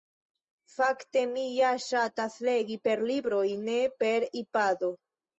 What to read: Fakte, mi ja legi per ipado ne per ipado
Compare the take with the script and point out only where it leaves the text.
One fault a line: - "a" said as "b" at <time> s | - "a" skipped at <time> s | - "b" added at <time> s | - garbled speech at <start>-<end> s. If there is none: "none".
- "ŝatas" added at 1.8 s
- "ipado" said as "libroj" at 3.1 s